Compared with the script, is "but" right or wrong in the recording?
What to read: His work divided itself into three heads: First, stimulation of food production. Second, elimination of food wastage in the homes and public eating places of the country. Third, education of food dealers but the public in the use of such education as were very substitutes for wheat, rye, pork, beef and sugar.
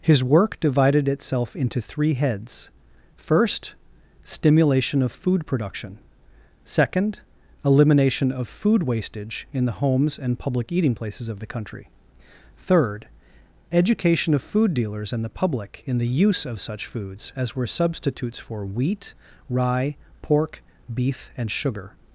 wrong